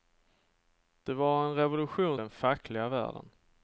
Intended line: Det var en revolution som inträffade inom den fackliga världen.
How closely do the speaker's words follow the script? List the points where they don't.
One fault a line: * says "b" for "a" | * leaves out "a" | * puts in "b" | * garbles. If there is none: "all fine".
* leaves out "som inträffade inom"